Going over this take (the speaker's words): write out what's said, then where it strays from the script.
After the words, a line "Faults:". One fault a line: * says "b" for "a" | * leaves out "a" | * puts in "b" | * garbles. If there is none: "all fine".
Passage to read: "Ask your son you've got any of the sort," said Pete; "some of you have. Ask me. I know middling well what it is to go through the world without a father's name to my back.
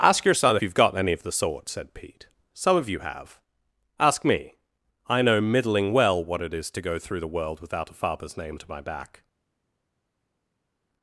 "Ask your son you've got any of the sort," said Pete; "some of you have. Ask me. I know middling well what it is to go through the world without a father's name to my back.
Faults:
all fine